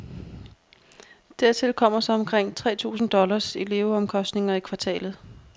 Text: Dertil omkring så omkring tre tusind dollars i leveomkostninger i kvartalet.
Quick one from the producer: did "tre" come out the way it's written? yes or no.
yes